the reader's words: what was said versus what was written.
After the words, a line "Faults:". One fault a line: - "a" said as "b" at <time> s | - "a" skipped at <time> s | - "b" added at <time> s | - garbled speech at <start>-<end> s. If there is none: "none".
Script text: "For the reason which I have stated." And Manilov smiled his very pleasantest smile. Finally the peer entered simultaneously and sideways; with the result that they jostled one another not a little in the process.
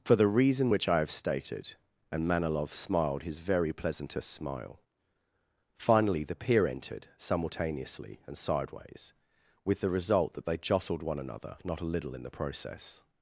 "For the reason which I have stated." And Manilov smiled his very pleasantest smile. Finally the peer entered simultaneously and sideways; with the result that they jostled one another not a little in the process.
Faults:
none